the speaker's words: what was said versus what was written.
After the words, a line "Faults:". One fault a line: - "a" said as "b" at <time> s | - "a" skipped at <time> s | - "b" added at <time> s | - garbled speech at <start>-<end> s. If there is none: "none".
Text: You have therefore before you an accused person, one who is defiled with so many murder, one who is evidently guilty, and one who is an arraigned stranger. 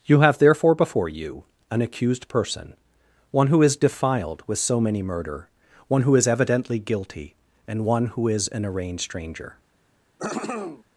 You have therefore before you an accused person, one who is defiled with so many murder, one who is evidently guilty, and one who is an arraigned stranger.
Faults:
none